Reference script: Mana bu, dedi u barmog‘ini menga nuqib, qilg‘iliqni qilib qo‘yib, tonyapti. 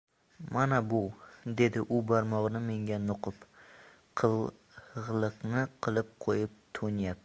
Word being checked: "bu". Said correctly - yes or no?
yes